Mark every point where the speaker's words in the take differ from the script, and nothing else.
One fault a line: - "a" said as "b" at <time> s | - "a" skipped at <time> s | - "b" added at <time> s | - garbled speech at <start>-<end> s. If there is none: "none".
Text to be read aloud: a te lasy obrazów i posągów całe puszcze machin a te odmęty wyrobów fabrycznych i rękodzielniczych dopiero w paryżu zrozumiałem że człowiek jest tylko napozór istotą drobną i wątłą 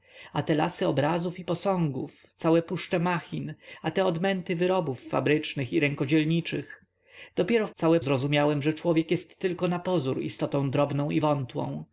- "paryżu" said as "całe" at 7.7 s